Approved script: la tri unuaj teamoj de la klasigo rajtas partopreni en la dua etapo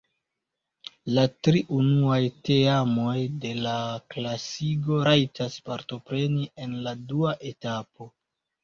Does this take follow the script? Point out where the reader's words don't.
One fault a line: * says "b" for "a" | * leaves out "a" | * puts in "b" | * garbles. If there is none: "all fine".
all fine